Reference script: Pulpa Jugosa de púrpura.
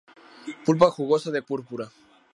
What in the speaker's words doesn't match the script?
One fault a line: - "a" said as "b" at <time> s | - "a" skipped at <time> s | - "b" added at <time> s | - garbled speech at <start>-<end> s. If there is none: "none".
none